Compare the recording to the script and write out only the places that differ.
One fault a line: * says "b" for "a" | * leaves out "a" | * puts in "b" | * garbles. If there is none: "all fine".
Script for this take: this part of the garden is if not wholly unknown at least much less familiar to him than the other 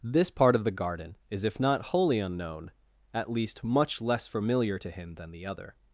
all fine